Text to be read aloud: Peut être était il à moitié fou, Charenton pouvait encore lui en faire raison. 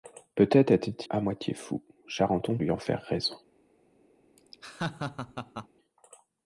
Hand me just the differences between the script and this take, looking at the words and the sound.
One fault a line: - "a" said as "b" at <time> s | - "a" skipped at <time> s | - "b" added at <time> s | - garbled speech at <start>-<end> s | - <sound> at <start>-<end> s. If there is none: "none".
- "il" skipped at 0.9 s
- "pouvait encore" skipped at 2.6 s
- laugh at 4.4-5.7 s